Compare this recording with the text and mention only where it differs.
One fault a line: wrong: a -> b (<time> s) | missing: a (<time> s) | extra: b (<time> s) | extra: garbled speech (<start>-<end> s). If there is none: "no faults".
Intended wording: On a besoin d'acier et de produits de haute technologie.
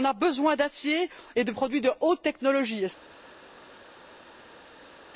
no faults